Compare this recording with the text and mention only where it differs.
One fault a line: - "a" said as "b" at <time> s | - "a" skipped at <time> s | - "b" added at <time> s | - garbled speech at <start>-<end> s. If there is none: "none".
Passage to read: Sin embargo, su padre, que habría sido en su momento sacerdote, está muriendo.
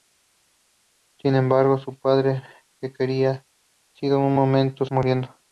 - "sacerdote está" skipped at 4.9 s